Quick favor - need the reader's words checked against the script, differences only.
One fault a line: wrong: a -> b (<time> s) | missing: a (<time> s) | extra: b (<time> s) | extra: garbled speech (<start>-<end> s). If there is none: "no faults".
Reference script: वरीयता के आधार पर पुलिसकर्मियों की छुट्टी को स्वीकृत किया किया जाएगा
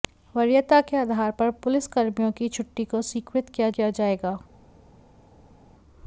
no faults